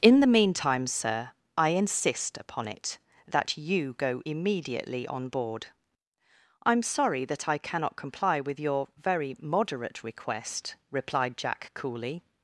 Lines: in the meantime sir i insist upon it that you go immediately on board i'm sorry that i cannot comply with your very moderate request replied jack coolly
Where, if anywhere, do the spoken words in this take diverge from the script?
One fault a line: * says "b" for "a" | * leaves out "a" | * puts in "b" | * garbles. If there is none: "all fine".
all fine